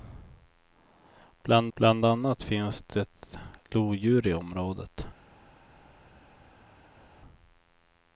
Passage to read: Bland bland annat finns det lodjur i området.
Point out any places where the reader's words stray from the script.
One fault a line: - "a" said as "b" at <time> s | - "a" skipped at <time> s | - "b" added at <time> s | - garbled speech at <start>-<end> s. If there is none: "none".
none